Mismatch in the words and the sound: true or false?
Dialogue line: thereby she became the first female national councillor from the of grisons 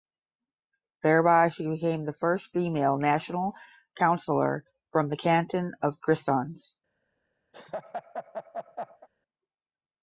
true